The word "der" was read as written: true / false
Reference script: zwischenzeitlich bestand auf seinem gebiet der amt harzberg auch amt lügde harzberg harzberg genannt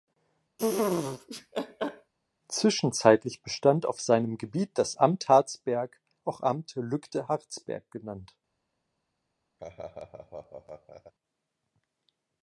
false